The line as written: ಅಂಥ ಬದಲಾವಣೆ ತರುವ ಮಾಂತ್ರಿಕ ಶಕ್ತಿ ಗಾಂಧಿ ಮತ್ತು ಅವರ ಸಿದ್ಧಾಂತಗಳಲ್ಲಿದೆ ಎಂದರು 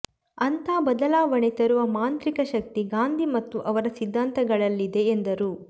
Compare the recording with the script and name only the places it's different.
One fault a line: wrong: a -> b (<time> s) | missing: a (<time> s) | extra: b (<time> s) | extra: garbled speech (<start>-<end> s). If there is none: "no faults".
no faults